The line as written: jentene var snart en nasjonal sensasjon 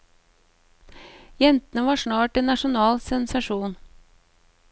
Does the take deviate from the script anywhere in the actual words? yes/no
no